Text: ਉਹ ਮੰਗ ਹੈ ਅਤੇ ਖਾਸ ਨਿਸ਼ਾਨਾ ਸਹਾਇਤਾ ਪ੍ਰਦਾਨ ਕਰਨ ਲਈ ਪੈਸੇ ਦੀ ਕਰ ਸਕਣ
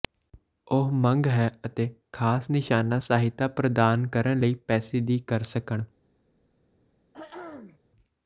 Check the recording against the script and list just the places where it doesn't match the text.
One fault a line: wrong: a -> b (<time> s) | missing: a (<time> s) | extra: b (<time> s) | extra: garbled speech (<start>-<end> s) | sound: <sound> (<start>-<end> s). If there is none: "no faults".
sound: throat clearing (7.1-7.8 s)